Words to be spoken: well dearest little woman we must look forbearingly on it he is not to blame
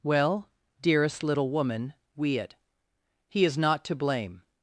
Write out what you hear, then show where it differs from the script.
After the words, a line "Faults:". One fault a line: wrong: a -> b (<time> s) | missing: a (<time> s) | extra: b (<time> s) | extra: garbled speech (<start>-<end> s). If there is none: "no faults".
well dearest little woman we it he is not to blame
Faults:
missing: must look forbearingly on (2.4 s)